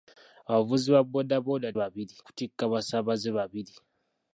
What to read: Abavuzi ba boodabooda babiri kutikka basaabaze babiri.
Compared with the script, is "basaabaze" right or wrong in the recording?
right